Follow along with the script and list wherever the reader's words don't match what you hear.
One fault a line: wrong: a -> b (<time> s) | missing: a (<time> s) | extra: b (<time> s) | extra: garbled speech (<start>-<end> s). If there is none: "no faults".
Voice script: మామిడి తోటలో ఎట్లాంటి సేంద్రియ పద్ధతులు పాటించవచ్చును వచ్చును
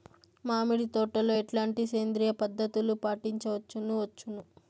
no faults